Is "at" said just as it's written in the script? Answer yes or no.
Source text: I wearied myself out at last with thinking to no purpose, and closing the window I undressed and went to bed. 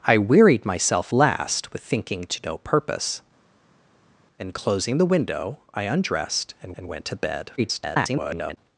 no